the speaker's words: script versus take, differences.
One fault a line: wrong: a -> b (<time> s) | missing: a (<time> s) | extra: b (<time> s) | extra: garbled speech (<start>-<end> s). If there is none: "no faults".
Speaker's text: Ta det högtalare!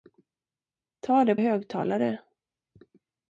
no faults